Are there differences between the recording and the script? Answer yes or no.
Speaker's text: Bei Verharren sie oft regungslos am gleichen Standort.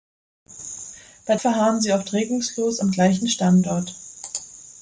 no